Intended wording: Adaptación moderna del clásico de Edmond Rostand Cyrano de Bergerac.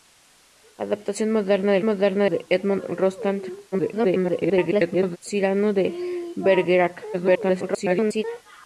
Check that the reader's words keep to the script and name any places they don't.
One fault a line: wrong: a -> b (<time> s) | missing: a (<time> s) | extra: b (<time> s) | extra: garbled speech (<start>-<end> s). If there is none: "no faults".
wrong: clásico -> moderna (1.8 s)
extra: garbled speech (3.7-5.2 s)
extra: garbled speech (7.1-8.2 s)